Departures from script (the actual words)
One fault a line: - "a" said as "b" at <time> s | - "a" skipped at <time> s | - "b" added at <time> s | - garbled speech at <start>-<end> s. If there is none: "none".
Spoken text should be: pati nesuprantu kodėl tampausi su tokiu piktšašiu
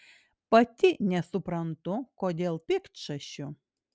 - "tampausi su tokiu" skipped at 2.6 s